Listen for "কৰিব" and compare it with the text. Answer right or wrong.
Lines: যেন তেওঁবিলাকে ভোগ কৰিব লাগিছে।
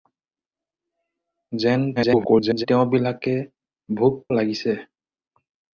wrong